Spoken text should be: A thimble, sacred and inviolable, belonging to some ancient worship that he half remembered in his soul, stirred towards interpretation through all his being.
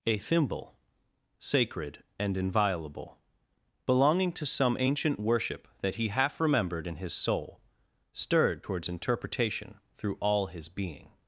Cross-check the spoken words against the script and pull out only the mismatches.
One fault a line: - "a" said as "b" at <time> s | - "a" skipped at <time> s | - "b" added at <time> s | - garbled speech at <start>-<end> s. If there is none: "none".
none